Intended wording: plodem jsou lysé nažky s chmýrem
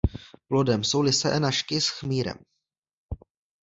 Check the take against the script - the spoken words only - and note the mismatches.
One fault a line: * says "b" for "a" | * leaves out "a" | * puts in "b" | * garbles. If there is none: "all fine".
all fine